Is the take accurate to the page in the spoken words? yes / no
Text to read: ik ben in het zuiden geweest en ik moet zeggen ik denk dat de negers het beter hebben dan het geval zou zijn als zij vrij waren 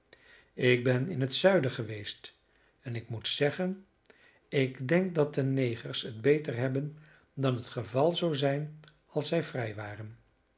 yes